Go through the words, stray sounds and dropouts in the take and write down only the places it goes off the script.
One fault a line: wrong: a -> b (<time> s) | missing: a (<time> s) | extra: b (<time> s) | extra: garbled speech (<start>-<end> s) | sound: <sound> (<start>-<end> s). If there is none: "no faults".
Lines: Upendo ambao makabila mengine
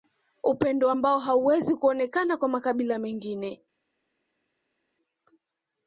extra: hauwezi kuonekana kwa (1.2 s)